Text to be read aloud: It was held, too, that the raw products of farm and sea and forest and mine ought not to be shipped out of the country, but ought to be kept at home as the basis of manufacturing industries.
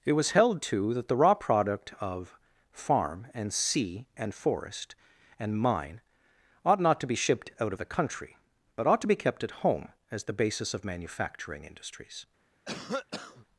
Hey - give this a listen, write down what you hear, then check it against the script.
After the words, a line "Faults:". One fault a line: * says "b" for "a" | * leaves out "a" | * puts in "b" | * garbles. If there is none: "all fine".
It was held, too, that the raw product of farm and sea and forest and mine ought not to be shipped out of the country, but ought to be kept at home as the basis of manufacturing industries.
Faults:
* says "product" for "products"